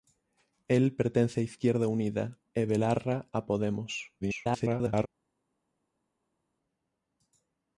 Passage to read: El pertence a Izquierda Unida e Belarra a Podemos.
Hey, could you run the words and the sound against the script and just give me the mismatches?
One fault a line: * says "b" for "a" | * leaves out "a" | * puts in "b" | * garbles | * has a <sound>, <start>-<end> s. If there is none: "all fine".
* garbles